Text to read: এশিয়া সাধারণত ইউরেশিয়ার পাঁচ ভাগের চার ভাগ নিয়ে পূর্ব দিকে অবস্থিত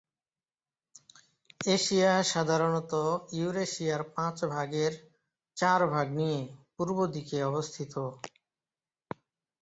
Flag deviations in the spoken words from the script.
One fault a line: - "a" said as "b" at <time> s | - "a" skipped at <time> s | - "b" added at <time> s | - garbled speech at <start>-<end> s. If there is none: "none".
none